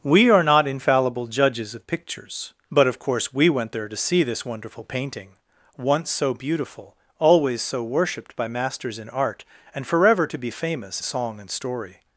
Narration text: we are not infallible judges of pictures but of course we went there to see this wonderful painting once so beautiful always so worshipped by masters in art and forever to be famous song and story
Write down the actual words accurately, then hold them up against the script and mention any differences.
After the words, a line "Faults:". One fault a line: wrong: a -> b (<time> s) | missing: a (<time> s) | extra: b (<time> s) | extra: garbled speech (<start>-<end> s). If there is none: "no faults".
we are not infallible judges of pictures but of course we went there to see this wonderful painting once so beautiful always so worshipped by masters in art and forever to be famous song and story
Faults:
no faults